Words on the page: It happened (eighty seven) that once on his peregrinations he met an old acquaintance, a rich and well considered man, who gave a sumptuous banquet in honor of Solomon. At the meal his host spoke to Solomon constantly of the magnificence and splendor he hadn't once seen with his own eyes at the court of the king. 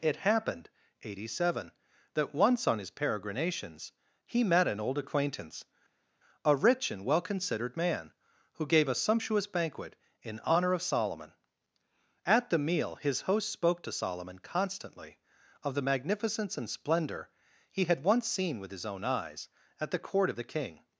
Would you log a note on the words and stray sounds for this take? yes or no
yes